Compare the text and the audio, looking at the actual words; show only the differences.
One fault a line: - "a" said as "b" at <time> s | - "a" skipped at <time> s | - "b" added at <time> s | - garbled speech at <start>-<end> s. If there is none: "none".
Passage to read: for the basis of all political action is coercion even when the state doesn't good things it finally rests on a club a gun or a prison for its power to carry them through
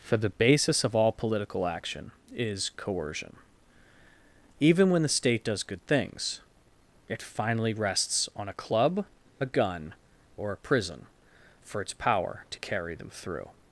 - "doesn't" said as "does" at 5.5 s